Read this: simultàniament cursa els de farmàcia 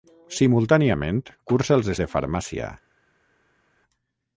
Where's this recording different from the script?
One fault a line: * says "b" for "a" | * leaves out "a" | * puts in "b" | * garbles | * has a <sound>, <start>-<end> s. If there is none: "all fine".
all fine